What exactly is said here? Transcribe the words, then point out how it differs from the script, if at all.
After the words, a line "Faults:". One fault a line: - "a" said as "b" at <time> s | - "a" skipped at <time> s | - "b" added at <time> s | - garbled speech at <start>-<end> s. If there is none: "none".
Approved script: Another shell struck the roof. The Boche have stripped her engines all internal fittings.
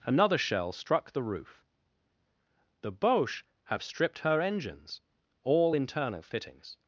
Another shell struck the roof. The Boche have stripped her engines all internal fittings.
Faults:
none